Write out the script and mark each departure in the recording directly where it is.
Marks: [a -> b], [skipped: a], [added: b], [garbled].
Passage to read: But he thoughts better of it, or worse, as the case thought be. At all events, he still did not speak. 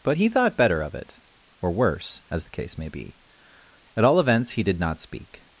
But he [thoughts -> thought] better of it, or worse, as the case [thought -> may] be. At all events, he [skipped: still] did not speak.